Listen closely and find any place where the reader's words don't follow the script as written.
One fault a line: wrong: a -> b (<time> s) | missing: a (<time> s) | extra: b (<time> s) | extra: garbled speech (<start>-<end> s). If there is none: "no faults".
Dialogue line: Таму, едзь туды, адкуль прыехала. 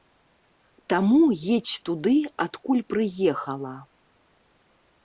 no faults